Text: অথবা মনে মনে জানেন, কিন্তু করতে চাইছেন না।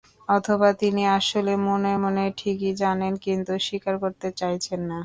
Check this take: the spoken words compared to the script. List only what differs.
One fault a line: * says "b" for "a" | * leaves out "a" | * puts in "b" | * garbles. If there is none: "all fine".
* puts in "তিনি আসলে"
* puts in "ঠিকই"
* puts in "স্বীকার"